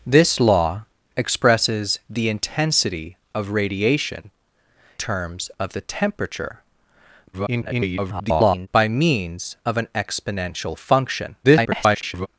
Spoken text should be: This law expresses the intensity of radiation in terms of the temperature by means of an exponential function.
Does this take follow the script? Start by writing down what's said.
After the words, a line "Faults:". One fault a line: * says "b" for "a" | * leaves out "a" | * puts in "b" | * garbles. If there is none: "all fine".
This law expresses the intensity of radiation terms of the temperature [garbled] by means of an exponential function. [garbled]
Faults:
* leaves out "in"
* garbles
* garbles